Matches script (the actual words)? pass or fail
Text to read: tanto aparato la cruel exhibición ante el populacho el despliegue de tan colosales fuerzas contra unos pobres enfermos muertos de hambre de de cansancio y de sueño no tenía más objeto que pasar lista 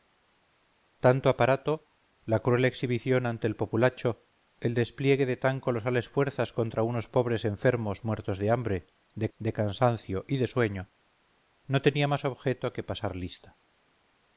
pass